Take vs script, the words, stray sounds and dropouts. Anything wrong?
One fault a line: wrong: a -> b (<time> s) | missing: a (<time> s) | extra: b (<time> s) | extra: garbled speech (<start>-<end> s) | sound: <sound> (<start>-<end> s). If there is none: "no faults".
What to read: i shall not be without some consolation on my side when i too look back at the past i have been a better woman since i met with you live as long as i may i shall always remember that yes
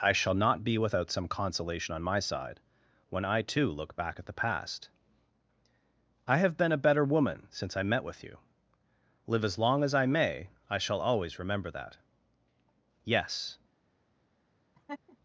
sound: laugh (14.7-15.2 s)